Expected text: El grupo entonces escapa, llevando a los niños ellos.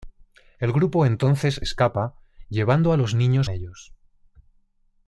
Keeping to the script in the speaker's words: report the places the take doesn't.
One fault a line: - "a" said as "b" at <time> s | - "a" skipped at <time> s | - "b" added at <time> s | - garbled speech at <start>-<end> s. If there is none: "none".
none